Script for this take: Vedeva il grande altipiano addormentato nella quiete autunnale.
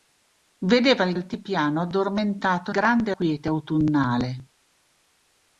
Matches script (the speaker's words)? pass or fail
fail